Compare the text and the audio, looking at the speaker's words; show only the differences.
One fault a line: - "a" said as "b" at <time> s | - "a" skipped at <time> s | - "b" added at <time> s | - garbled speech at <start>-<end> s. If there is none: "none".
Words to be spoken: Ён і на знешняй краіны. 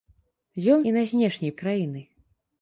none